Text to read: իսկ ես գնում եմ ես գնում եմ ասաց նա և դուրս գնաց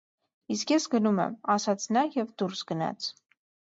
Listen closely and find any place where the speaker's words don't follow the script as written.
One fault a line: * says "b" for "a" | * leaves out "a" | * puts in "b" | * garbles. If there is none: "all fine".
* leaves out "ես գնում եմ"